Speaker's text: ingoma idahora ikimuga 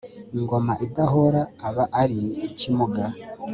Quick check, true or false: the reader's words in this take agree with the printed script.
false